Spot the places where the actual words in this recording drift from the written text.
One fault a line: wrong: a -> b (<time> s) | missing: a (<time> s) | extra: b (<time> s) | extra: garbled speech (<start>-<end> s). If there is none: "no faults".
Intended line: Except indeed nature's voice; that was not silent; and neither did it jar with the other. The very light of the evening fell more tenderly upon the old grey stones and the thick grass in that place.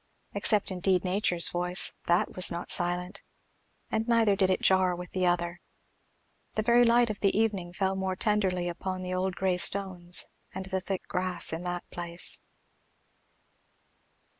no faults